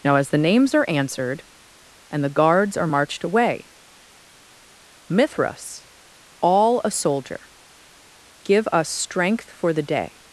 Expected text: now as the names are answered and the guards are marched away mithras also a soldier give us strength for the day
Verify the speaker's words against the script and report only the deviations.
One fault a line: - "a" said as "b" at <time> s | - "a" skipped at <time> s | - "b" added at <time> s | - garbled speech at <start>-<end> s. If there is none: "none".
- "also" said as "all" at 6.4 s